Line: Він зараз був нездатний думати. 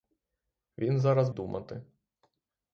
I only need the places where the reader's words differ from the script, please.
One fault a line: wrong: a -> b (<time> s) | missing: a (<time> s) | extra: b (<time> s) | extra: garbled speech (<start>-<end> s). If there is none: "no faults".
missing: був нездатний (1.3 s)